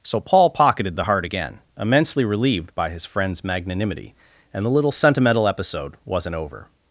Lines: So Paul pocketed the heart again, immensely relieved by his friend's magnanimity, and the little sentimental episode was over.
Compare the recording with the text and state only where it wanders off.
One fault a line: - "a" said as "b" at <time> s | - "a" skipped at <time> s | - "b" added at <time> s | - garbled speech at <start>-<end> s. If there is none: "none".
- "was" said as "wasn't" at 6.0 s